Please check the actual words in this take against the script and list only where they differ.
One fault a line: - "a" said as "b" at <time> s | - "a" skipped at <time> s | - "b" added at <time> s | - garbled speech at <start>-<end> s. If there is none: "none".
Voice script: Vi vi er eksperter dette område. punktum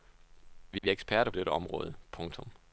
none